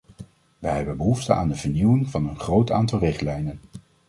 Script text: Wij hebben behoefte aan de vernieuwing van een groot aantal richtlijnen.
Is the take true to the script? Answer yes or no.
yes